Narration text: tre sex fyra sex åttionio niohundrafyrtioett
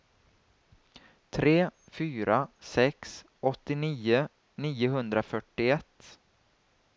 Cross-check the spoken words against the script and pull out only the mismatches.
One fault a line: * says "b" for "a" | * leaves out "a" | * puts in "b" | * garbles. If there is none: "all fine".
* leaves out "sex"